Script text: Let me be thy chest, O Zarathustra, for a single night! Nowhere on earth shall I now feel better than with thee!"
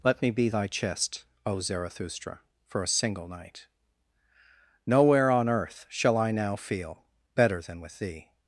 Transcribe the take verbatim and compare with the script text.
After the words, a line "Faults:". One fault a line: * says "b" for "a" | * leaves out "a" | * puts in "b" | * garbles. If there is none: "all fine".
Let me be thy chest, O Zarathustra, for a single night! Nowhere on earth shall I now feel better than with thee!"
Faults:
all fine